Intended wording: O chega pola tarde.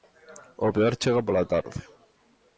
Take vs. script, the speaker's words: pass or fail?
fail